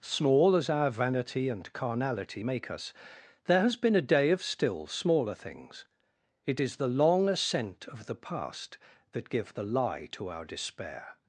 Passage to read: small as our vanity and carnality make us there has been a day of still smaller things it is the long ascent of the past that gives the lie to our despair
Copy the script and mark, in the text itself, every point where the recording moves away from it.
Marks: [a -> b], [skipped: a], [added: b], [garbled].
small as our vanity and carnality make us there has been a day of still smaller things it is the long ascent of the past that [gives -> give] the lie to our despair